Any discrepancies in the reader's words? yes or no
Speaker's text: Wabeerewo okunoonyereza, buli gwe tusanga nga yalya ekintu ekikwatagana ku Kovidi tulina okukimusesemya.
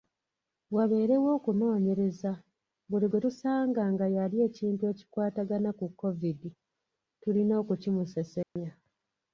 no